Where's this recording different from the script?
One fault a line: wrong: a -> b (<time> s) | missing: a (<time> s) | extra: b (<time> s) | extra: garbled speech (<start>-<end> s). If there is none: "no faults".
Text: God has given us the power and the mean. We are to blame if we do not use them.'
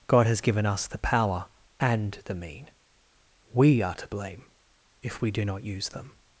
no faults